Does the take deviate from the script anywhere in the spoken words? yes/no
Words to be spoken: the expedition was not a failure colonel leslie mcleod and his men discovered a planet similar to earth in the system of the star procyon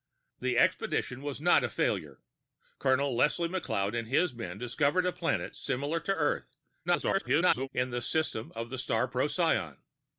yes